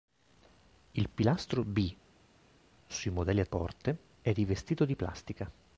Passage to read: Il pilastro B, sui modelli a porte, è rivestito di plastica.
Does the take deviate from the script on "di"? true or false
false